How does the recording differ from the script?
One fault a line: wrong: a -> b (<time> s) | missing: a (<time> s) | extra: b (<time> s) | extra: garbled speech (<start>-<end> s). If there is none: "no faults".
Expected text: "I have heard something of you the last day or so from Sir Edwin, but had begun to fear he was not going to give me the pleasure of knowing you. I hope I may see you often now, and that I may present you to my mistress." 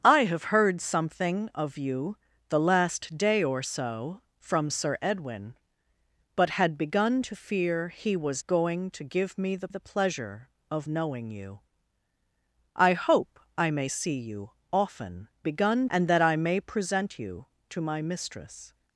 missing: not (8.4 s)
extra: the (9.7 s)
wrong: now -> begun (15.4 s)